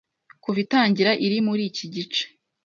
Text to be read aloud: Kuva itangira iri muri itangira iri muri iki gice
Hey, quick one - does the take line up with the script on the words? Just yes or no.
no